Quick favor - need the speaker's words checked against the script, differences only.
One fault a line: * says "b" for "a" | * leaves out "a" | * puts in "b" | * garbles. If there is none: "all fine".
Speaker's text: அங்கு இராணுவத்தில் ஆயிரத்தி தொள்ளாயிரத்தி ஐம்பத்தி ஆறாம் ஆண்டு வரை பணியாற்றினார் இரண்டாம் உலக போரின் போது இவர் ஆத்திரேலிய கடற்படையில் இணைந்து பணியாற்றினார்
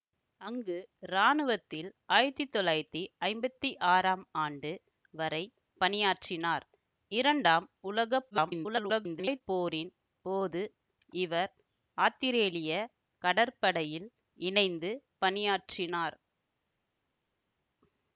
* garbles